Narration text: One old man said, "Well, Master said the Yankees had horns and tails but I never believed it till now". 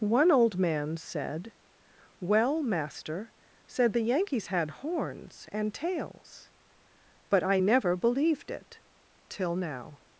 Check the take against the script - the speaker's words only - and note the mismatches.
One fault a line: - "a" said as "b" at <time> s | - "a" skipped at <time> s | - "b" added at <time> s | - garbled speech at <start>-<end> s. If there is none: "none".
none